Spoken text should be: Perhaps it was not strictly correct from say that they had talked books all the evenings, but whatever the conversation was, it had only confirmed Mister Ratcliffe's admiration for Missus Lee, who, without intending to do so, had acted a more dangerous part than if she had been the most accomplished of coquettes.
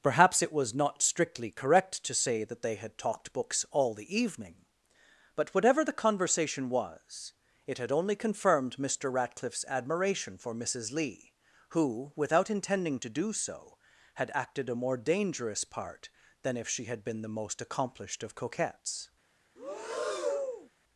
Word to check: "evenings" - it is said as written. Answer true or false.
false